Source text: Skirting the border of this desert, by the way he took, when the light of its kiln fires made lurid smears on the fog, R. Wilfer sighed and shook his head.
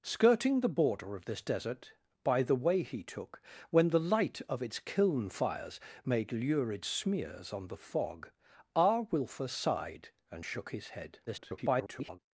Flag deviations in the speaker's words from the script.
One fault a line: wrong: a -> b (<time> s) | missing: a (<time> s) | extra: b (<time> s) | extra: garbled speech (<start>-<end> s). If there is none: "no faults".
extra: garbled speech (11.3-12.2 s)